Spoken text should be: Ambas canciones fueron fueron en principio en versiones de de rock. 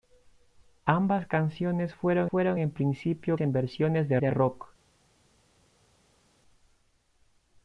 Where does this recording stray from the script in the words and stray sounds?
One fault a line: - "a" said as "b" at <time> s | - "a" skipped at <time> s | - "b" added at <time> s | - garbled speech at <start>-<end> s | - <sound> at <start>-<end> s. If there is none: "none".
none